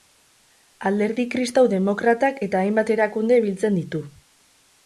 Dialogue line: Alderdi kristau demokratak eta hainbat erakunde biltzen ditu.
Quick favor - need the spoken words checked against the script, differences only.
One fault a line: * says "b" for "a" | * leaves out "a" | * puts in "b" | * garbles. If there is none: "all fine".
all fine